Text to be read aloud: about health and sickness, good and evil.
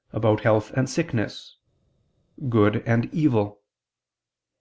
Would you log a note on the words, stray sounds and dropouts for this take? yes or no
no